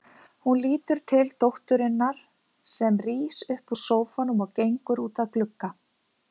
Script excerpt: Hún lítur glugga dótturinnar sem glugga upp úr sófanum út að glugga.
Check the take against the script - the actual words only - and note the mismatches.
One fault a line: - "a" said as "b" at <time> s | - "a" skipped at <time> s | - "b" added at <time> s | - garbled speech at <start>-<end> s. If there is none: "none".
- "glugga" said as "til" at 1.1 s
- "glugga" said as "rís" at 3.0 s
- "og gengur" added at 4.5 s